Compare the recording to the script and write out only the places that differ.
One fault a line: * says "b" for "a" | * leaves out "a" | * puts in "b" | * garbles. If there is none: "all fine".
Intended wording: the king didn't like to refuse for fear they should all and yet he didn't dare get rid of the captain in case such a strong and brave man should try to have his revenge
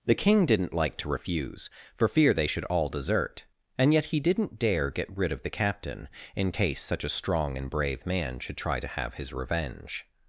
* puts in "desert"